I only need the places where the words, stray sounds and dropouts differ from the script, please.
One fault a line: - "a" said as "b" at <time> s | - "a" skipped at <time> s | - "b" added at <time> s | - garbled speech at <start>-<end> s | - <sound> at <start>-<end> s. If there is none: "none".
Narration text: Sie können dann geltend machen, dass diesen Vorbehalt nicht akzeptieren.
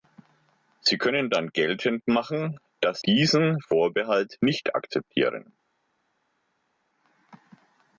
none